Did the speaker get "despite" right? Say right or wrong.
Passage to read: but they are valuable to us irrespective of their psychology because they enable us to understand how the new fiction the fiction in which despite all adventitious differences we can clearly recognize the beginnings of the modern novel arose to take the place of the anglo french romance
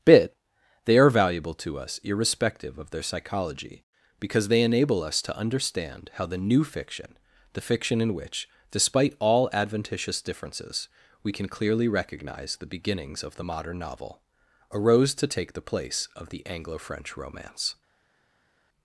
right